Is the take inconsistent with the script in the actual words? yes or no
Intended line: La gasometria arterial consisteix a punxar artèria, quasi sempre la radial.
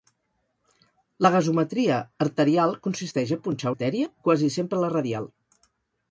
no